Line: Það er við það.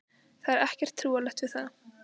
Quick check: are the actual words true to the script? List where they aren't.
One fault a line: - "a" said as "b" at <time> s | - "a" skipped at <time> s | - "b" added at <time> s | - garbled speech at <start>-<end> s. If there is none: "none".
- "ekkert trúarlegt" added at 0.6 s